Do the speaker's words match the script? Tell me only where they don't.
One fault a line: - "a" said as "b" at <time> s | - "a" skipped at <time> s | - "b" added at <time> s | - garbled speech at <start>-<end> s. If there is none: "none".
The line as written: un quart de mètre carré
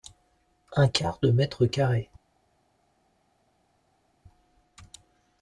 none